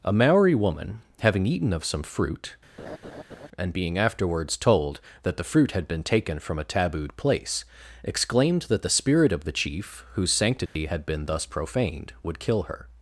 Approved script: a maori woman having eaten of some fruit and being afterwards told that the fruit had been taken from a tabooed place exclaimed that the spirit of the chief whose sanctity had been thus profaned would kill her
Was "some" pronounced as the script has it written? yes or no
yes